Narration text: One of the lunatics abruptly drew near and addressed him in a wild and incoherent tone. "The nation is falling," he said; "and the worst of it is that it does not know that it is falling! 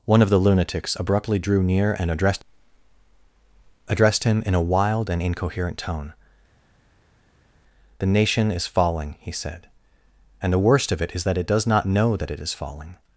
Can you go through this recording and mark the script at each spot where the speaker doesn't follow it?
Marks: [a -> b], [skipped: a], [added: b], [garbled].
One of the lunatics abruptly drew near and addressed [added: addressed] him in a wild and incoherent tone. "The nation is falling," he said; "and the worst of it is that it does not know that it is falling!